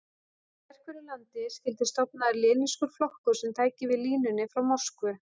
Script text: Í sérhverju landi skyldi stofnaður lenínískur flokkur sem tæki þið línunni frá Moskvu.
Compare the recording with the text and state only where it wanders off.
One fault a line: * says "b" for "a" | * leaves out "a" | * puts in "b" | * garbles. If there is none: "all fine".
* says "við" for "þið"